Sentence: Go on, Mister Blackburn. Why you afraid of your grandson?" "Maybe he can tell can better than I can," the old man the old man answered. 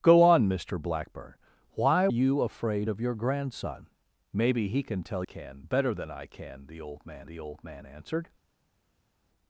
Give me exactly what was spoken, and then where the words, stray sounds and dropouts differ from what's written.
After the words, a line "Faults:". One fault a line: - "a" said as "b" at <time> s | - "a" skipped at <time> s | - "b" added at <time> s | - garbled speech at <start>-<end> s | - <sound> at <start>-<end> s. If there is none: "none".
Go on, Mister Blackburn. Why you afraid of your grandson?" "Maybe he can tell can better than I can," the old man the old man answered.
Faults:
none